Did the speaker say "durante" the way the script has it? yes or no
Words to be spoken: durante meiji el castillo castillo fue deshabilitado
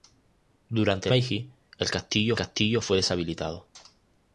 yes